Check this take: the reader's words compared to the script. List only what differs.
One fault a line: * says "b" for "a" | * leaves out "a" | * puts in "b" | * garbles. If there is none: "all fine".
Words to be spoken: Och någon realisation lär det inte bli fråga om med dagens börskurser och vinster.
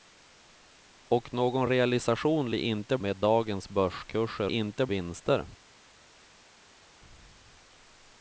* leaves out "lär"
* leaves out "bli fråga om"
* says "inte" for "och"